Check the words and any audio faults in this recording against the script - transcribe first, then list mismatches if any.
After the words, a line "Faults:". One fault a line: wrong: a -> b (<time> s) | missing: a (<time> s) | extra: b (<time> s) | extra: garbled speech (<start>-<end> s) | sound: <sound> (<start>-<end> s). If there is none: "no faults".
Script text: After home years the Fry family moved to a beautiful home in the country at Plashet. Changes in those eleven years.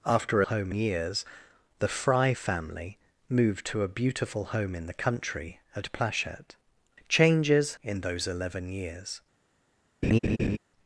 After home years the Fry family moved to a beautiful home in the country at Plashet. Changes in those eleven years.
Faults:
sound: laugh (10.0-10.6 s)